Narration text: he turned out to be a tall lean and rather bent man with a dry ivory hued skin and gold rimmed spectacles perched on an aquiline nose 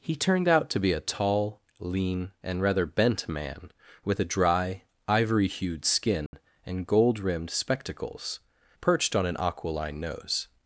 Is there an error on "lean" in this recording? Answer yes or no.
no